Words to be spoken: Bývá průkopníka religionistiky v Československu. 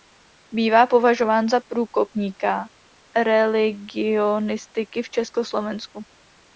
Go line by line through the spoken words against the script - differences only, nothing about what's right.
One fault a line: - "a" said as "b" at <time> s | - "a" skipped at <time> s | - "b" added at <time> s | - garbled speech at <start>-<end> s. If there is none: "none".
- "považován za" added at 0.9 s